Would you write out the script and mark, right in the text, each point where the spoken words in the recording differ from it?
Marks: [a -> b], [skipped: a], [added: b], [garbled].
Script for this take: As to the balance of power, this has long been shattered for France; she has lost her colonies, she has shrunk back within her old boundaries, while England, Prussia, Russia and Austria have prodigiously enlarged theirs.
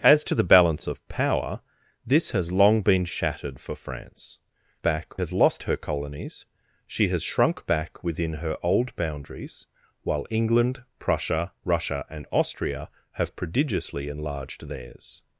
As to the balance of power, this has long been shattered for France; [she -> back] has lost her colonies, she has shrunk back within her old boundaries, while England, Prussia, Russia and Austria have prodigiously enlarged theirs.